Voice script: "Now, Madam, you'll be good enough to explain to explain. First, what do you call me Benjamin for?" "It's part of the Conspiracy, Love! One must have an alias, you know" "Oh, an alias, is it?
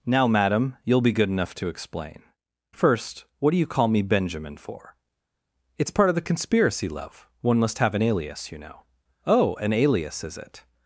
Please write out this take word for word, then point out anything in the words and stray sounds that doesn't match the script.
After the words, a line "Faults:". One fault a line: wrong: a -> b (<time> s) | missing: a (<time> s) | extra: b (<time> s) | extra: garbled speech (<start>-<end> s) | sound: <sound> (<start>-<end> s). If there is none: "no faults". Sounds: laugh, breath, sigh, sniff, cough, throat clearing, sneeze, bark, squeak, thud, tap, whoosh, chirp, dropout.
"Now, Madam, you'll be good enough to explain. First, what do you call me Benjamin for?" "It's part of the Conspiracy, Love! One must have an alias, you know" "Oh, an alias, is it?
Faults:
missing: to explain (2.2 s)